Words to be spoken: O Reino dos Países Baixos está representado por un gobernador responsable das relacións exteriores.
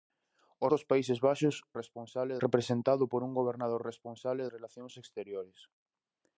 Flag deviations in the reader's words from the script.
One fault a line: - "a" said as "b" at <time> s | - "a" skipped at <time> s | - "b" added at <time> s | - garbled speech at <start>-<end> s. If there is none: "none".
- "Reino" skipped at 0.7 s
- "está" said as "responsable" at 1.8 s
- "das" skipped at 4.4 s